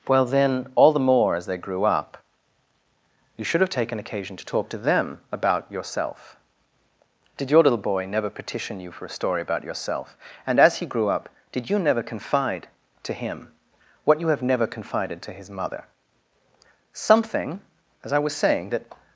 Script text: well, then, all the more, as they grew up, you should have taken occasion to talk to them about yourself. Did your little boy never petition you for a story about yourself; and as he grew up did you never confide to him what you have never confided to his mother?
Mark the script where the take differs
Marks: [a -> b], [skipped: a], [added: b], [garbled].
well, then, all the more, as they grew up, you should have taken occasion to talk to them about yourself. Did your little boy never petition you for a story about yourself; and as he grew up did you never confide to him what you have never confided to his mother? [added: Something as I was saying that]